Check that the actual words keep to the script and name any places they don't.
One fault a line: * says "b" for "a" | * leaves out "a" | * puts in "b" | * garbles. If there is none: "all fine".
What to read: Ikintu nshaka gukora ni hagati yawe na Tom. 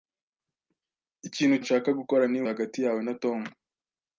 all fine